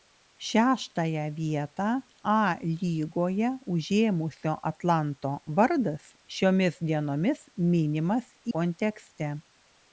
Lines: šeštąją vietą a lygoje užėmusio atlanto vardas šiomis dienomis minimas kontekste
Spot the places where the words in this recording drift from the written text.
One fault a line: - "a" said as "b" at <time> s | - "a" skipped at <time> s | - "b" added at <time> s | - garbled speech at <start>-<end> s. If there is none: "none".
none